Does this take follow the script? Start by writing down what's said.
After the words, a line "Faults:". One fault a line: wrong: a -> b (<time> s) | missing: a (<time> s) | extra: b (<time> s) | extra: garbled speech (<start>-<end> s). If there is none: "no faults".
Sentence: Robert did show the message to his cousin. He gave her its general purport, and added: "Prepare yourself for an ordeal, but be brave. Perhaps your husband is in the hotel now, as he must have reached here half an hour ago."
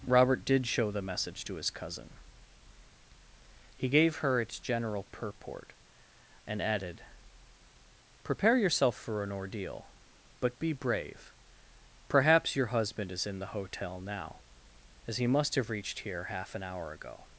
Robert did show the message to his cousin. He gave her its general purport, and added: "Prepare yourself for an ordeal, but be brave. Perhaps your husband is in the hotel now, as he must have reached here half an hour ago."
Faults:
no faults